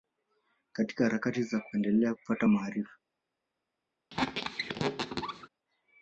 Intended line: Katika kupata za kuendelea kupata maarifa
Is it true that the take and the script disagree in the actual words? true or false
true